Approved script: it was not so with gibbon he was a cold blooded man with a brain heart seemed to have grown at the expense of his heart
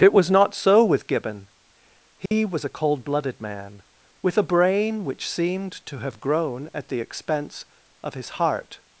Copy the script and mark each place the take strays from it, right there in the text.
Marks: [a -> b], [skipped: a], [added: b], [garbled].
it was not so with gibbon he was a cold blooded man with a brain [heart -> which] seemed to have grown at the expense of his heart